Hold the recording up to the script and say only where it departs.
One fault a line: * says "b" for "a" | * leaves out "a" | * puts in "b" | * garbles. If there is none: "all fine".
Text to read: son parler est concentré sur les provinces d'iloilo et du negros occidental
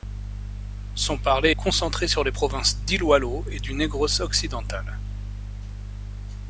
* leaves out "est"